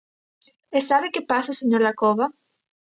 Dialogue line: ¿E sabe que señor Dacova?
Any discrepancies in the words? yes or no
yes